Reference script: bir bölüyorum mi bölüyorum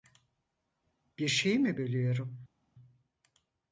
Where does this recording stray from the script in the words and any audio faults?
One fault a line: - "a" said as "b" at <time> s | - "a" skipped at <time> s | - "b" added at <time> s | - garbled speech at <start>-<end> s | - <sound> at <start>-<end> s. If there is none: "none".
- "bölüyorum" said as "şeyi" at 1.3 s